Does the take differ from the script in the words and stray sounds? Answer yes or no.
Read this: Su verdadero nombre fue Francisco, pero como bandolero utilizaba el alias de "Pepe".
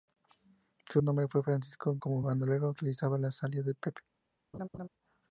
yes